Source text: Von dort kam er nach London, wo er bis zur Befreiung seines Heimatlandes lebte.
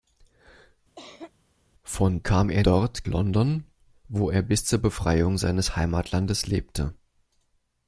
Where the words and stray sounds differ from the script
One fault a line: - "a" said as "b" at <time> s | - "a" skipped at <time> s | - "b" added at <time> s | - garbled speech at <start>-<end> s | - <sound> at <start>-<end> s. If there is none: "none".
- cough at 1.0-1.3 s
- "dort" skipped at 2.2 s
- "nach" said as "dort" at 2.6 s